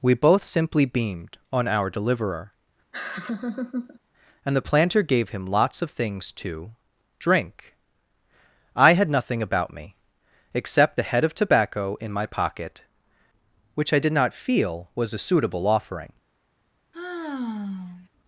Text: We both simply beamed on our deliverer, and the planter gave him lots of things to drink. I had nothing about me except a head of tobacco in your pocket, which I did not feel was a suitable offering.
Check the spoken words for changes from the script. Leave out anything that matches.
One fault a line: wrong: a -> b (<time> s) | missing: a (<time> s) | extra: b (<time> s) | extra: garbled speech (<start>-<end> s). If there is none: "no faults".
wrong: your -> my (12.1 s)